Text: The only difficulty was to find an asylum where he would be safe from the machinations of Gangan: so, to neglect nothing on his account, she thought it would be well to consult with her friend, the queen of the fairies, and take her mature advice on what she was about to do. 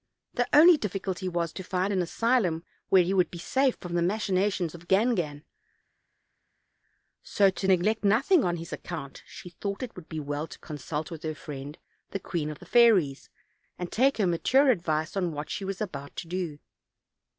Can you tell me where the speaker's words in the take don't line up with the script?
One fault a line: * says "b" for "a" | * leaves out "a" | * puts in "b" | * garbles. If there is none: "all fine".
all fine